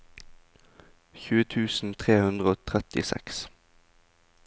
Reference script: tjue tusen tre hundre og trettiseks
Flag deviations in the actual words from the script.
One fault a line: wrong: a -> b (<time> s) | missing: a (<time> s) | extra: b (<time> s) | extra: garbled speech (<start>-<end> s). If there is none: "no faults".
no faults